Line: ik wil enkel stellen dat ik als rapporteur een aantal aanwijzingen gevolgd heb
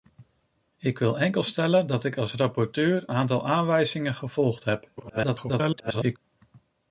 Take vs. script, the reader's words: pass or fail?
fail